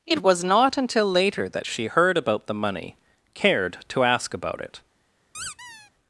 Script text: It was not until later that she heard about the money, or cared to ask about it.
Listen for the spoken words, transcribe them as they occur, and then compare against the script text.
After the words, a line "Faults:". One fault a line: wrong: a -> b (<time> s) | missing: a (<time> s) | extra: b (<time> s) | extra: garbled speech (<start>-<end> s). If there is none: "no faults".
It was not until later that she heard about the money, cared to ask about it.
Faults:
missing: or (3.0 s)